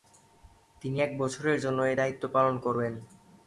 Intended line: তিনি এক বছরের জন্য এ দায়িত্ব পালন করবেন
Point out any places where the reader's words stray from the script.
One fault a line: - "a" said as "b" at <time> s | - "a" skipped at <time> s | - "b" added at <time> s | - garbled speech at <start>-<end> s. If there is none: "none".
none